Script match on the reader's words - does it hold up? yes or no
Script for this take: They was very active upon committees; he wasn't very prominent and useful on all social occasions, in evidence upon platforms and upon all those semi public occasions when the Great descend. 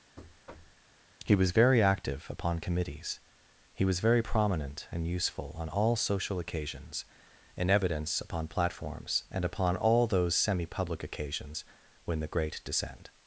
no